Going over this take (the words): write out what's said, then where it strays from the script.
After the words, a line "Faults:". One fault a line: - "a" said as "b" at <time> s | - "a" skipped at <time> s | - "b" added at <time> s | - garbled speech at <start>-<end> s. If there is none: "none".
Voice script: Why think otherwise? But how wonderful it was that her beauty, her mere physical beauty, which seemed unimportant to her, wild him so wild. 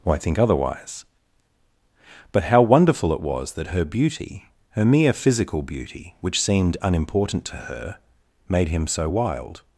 Why think otherwise? But how wonderful it was that her beauty, her mere physical beauty, which seemed unimportant to her, made him so wild.
Faults:
- "wild" said as "made" at 8.5 s